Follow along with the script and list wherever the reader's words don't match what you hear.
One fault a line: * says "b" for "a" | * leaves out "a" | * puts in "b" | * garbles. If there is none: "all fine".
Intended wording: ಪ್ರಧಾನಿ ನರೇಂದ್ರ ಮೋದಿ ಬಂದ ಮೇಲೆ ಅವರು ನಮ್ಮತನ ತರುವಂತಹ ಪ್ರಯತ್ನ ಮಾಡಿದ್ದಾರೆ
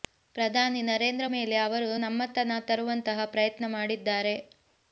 * leaves out "ಮೋದಿ ಬಂದ"